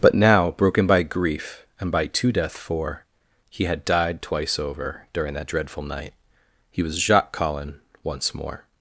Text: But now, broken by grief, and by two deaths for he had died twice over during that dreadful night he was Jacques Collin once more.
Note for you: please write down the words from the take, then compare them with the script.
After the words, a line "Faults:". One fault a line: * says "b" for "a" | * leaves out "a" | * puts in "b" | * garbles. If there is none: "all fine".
But now, broken by grief, and by two death for he had died twice over during that dreadful night he was Jacques Collin once more.
Faults:
* says "death" for "deaths"